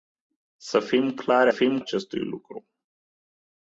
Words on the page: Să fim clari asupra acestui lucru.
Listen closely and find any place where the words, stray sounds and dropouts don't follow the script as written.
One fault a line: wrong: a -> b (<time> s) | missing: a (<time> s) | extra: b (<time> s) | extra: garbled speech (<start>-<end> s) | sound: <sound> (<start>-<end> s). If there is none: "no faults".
wrong: asupra -> fim (1.5 s)